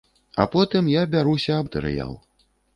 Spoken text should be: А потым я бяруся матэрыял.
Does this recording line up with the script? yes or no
yes